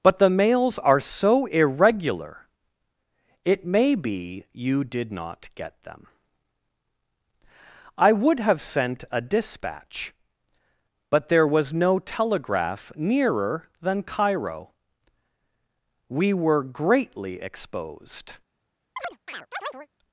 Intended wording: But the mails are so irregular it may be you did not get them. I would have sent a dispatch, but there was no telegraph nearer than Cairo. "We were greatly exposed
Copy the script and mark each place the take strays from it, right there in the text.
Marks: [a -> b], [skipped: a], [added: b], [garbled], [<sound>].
But the mails are so irregular it may be you did not get them. I would have sent a dispatch, but there was no telegraph nearer than Cairo. "We were greatly exposed [chirp]